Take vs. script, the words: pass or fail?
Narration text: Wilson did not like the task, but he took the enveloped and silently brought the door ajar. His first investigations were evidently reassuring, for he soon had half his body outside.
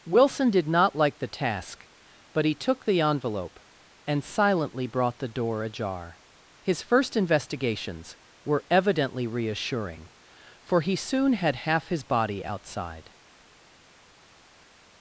fail